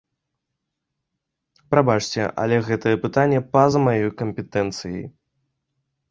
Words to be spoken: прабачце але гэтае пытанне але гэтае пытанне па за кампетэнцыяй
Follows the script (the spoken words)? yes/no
no